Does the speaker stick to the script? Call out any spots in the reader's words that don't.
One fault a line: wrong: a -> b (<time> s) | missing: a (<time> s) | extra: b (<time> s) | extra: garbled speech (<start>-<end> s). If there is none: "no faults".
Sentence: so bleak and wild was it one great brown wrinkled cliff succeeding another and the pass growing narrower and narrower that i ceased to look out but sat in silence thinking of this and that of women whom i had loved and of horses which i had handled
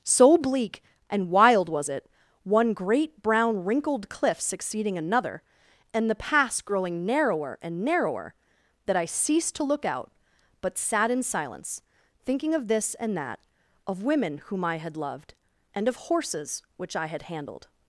no faults